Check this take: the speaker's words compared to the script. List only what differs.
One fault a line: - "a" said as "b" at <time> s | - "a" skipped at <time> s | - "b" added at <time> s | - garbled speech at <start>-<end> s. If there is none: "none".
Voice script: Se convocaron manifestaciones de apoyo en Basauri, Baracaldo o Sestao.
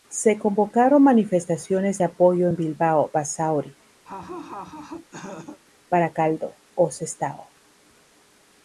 - "Bilbao" added at 2.5 s